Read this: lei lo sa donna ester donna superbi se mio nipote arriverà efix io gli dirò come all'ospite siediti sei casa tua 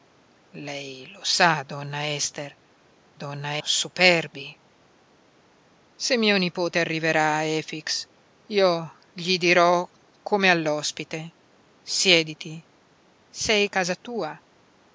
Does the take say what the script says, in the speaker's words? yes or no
yes